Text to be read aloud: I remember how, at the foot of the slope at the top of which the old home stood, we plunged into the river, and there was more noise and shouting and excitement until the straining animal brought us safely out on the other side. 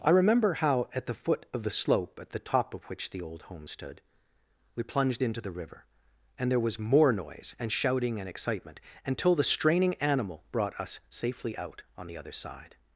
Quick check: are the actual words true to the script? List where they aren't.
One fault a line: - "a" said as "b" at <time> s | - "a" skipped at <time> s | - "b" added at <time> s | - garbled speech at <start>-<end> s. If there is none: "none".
none